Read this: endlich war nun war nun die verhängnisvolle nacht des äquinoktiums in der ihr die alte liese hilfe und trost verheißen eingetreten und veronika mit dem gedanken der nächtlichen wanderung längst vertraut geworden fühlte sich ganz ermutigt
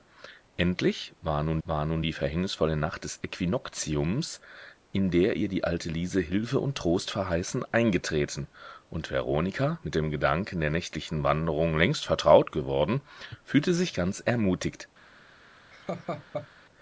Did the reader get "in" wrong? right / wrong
right